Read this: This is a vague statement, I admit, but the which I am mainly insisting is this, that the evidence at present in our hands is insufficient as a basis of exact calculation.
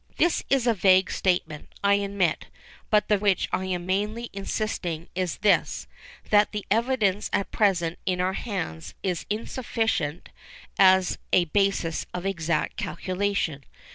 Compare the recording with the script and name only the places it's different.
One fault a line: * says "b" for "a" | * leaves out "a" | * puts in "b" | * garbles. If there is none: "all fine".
all fine